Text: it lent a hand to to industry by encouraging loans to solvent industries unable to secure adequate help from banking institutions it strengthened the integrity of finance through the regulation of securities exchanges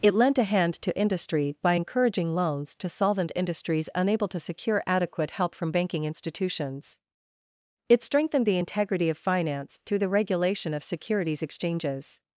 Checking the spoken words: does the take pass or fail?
fail